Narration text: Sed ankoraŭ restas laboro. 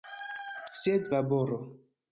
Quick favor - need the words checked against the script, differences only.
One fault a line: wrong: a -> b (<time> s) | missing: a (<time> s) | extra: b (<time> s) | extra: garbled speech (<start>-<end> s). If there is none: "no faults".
missing: ankoraŭ restas (1.1 s)